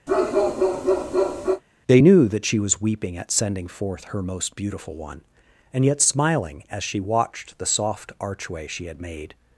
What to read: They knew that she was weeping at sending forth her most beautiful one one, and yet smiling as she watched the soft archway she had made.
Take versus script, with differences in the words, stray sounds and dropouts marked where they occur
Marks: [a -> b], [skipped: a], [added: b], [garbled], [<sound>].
[bark] They knew that she was weeping at sending forth her most beautiful one [skipped: one,] and yet smiling as she watched the soft archway she had made.